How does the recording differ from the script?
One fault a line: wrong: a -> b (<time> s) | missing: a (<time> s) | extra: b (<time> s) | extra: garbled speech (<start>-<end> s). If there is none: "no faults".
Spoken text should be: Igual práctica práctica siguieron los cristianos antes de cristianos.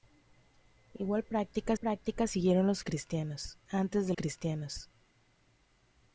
no faults